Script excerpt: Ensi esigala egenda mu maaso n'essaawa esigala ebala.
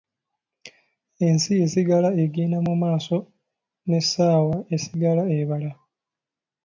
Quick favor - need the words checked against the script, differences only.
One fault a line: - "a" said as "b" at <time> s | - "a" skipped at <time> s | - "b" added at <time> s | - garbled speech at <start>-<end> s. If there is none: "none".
none